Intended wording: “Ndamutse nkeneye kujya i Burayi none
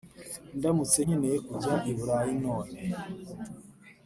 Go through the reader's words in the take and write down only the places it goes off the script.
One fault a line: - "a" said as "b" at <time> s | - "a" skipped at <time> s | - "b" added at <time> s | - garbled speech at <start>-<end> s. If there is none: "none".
none